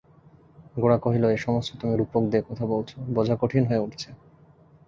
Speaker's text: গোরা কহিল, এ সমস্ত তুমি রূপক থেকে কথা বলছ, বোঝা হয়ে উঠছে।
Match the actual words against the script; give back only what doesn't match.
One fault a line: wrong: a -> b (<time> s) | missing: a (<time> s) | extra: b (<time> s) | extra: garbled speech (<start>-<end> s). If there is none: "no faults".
wrong: থেকে -> দিয়ে (2.3 s)
extra: কঠিন (3.4 s)